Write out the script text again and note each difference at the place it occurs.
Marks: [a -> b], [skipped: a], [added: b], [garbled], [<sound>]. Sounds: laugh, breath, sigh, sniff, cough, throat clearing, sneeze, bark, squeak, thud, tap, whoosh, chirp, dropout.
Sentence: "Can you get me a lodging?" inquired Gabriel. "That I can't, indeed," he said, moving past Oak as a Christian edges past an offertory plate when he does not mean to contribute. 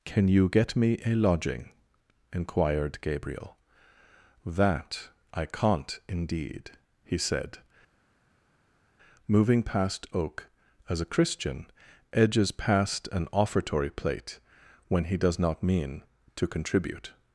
"Can you get me a lodging?" inquired Gabriel. "That I can't, indeed," he said, moving past Oak as a Christian edges past an offertory plate when he does not mean to contribute.